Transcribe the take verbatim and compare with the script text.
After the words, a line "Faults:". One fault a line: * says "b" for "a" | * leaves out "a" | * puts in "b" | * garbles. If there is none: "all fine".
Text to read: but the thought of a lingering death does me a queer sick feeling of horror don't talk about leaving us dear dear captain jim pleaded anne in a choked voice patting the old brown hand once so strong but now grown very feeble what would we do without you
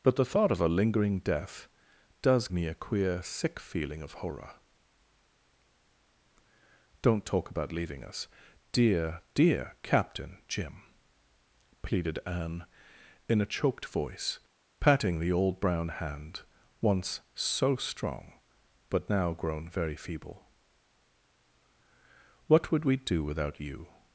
but the thought of a lingering death does me a queer sick feeling of horror don't talk about leaving us dear dear captain jim pleaded anne in a choked voice patting the old brown hand once so strong but now grown very feeble what would we do without you
Faults:
all fine